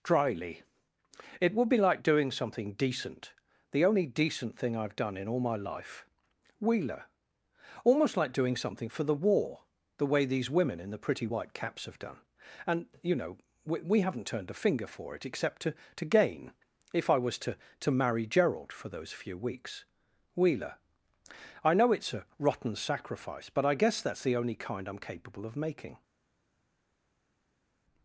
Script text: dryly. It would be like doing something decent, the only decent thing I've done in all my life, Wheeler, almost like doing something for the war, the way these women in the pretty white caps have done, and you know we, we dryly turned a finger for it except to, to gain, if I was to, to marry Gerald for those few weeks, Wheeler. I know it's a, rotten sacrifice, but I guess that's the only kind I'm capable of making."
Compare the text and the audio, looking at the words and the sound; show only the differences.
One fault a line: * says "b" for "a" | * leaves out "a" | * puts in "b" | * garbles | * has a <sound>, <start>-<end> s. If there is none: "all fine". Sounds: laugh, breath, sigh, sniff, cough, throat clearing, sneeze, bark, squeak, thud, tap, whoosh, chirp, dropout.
* says "haven't" for "dryly"